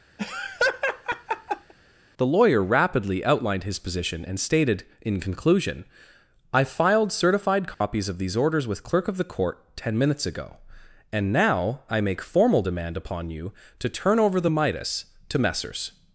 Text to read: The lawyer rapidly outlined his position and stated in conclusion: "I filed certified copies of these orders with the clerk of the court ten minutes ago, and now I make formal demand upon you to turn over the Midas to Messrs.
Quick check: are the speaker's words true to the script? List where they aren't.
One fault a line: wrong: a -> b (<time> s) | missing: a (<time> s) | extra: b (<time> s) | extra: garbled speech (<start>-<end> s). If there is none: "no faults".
missing: the (8.8 s)